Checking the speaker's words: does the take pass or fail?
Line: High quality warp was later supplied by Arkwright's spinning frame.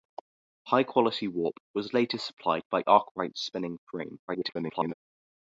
fail